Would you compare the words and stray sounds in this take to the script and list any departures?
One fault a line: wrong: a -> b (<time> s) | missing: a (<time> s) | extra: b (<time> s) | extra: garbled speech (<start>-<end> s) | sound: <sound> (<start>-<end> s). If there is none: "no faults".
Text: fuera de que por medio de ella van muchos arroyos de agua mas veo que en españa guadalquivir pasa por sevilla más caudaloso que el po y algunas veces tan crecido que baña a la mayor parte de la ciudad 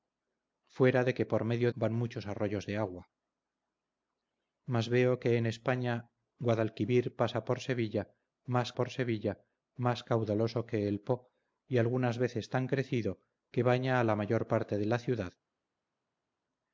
missing: de ella (1.7 s)
extra: por sevilla más (8.7 s)